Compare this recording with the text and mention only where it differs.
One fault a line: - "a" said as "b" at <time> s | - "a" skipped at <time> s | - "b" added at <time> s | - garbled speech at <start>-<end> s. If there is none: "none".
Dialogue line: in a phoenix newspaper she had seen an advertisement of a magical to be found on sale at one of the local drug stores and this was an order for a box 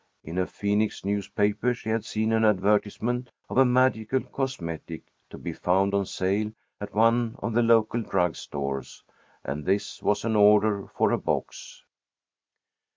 - "cosmetic" added at 4.2 s